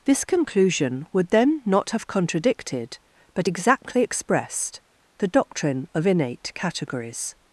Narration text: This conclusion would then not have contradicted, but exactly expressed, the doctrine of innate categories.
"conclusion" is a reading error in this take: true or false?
false